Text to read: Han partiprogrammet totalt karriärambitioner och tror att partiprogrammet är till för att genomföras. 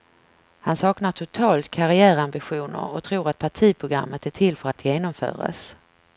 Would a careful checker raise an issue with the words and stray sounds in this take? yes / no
yes